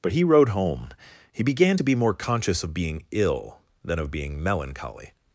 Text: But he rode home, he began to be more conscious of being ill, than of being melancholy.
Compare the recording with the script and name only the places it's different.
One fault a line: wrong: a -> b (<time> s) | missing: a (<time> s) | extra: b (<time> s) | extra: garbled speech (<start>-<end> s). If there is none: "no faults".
no faults